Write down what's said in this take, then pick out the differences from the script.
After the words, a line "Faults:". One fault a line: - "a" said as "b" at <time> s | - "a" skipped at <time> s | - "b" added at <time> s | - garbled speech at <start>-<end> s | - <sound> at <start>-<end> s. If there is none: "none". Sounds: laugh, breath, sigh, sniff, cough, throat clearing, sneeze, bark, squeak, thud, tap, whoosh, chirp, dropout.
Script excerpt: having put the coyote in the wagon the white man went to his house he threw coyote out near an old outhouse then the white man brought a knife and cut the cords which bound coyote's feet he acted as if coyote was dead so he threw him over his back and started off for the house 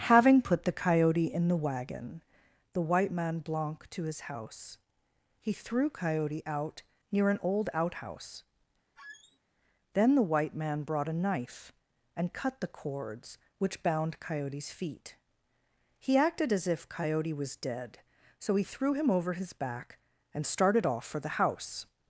having put the coyote in the wagon the white man blanc to his house he threw coyote out near an old outhouse then the white man brought a knife and cut the cords which bound coyote's feet he acted as if coyote was dead so he threw him over his back and started off for the house
Faults:
- "went" said as "blanc" at 3.4 s
- squeak at 9.0-9.4 s